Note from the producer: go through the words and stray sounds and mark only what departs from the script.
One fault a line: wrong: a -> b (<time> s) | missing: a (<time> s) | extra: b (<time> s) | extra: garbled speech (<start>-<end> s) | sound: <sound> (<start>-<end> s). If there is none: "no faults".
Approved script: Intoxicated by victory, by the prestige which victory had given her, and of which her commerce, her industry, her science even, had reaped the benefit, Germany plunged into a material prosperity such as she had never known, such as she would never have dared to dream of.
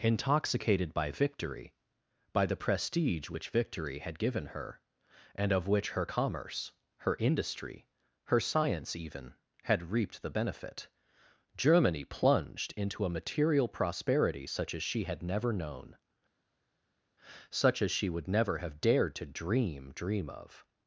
extra: dream (19.9 s)